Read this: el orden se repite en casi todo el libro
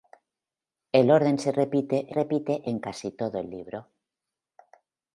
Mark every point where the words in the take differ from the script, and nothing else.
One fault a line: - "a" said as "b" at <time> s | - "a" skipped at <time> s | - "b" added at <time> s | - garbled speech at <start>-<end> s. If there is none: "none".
- "repite" added at 2.1 s